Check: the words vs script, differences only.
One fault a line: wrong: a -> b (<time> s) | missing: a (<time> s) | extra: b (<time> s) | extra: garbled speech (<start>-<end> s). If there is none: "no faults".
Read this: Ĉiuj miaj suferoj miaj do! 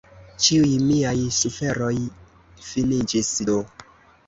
wrong: miaj -> finiĝis (2.7 s)